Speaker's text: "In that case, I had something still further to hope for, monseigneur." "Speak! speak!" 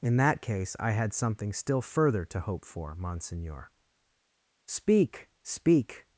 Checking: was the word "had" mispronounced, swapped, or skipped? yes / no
no